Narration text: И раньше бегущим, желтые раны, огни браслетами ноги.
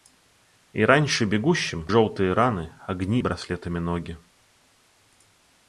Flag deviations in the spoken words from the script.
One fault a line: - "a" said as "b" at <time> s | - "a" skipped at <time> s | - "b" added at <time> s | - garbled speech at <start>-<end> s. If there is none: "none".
none